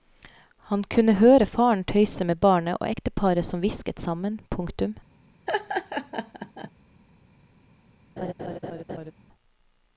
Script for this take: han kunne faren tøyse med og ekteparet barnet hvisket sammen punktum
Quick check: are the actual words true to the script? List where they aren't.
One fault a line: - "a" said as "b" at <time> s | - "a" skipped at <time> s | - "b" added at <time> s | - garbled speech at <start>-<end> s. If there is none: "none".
- "høre" added at 1.2 s
- "barnet" added at 2.4 s
- "barnet" said as "som" at 3.4 s